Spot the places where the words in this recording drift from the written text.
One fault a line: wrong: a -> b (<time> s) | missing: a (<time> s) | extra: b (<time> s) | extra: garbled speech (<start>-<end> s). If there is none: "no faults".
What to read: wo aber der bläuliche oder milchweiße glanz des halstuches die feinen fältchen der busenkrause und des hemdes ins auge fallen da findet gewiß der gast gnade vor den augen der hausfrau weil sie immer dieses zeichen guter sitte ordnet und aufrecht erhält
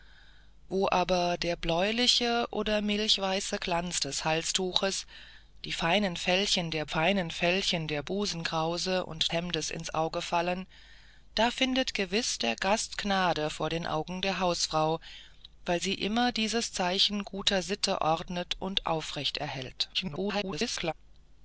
extra: feinen fältchen der (6.9 s)
missing: des (9.3 s)
extra: garbled speech (19.9-20.9 s)